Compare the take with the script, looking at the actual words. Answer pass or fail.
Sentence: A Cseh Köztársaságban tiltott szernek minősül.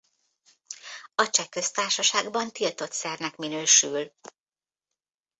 pass